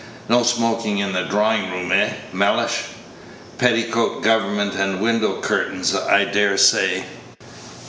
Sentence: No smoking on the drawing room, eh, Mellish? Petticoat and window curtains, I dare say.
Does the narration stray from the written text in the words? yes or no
yes